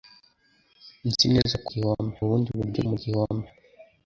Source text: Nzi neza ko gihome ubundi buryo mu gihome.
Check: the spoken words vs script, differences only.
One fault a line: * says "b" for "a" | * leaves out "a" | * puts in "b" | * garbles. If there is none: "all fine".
all fine